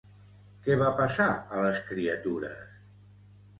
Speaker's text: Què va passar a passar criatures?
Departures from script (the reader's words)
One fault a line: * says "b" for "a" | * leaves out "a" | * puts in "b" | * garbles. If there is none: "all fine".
* says "les" for "passar"